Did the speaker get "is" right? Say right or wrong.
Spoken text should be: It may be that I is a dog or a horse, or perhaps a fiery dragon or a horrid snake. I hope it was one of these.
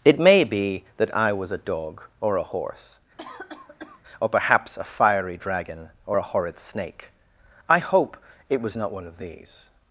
wrong